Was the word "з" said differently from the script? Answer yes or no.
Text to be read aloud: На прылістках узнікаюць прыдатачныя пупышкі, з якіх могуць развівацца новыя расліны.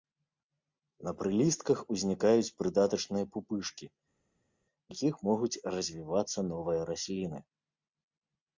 yes